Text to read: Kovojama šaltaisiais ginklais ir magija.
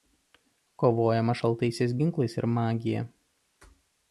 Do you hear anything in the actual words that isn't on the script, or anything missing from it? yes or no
no